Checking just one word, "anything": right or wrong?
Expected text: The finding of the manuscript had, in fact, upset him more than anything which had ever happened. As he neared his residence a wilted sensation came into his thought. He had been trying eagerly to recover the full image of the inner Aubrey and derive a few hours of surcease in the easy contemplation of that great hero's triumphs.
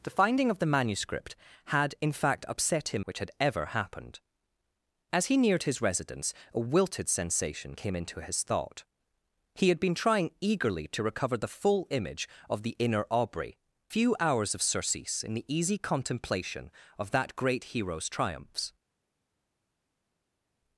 wrong